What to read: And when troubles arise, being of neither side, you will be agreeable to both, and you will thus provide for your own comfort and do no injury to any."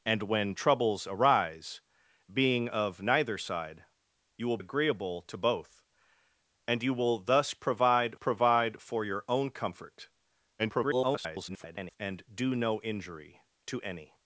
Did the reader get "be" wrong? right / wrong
wrong